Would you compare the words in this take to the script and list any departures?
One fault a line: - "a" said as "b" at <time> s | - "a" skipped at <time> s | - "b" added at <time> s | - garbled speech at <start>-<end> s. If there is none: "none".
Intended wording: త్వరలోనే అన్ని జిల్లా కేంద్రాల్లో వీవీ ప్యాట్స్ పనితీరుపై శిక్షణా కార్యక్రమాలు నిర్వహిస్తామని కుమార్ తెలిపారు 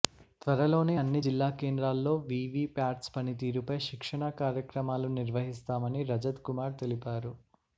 - "రజత్" added at 6.1 s